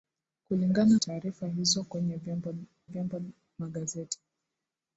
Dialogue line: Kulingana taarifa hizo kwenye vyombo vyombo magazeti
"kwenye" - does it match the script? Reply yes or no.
yes